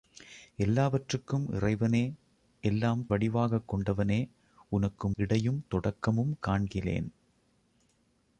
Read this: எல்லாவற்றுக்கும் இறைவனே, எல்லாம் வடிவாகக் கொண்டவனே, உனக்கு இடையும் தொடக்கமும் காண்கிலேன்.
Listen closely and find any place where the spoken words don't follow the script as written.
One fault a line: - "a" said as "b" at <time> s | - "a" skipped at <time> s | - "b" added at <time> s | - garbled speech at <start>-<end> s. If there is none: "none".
none